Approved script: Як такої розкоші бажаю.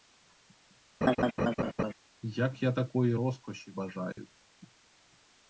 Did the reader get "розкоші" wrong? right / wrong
right